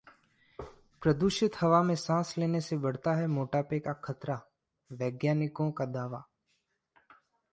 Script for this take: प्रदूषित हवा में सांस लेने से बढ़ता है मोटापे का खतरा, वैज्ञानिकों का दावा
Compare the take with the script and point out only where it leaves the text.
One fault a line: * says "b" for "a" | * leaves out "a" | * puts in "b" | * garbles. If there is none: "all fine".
all fine